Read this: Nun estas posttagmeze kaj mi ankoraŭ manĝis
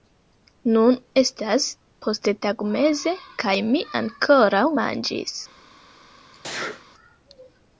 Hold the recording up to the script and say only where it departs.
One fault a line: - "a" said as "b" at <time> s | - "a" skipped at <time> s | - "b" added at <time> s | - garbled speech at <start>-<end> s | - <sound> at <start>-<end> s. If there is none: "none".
- sneeze at 6.3-6.9 s